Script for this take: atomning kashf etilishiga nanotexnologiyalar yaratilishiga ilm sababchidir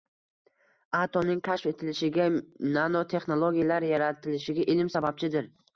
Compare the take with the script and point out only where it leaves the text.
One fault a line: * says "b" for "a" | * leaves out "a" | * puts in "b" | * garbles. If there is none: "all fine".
all fine